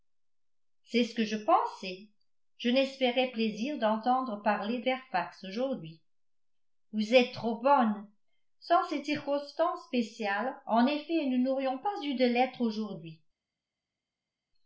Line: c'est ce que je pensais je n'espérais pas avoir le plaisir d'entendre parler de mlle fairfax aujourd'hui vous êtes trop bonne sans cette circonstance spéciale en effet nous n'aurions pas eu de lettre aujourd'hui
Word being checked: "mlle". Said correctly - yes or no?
no